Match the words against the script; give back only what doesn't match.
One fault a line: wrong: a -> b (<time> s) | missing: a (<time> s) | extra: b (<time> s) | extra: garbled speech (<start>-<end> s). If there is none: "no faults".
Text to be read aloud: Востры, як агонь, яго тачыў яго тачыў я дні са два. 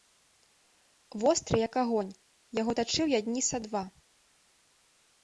missing: яго тачыў (3.0 s)